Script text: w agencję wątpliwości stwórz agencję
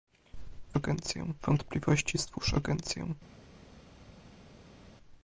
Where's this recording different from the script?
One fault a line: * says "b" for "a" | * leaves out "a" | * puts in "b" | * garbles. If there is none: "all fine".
all fine